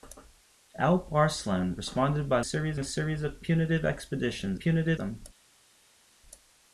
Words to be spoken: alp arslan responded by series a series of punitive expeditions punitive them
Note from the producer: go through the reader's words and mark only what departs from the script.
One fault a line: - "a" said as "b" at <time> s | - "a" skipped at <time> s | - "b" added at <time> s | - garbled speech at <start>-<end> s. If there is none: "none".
none